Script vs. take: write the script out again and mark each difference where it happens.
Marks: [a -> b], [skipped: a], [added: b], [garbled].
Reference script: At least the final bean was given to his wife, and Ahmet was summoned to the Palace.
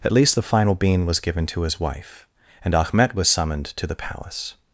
At least the final bean was given to his wife, and Ahmet was summoned to the Palace.